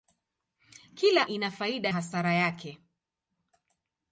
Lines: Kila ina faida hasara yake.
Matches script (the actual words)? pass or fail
pass